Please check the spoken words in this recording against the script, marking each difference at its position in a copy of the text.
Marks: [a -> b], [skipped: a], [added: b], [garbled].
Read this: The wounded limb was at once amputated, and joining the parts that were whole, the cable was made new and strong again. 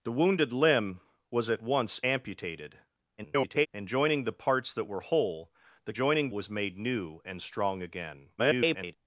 The wounded limb was at once amputated, [garbled] and joining the parts that were whole, the [cable -> joining] was made new and strong again. [garbled]